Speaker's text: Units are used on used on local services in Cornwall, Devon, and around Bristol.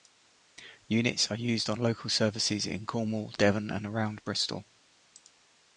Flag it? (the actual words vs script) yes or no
yes